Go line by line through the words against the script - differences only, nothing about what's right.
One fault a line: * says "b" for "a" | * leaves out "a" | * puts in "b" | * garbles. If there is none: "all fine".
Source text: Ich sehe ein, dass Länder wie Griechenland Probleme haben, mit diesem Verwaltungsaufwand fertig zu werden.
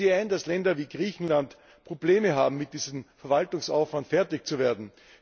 all fine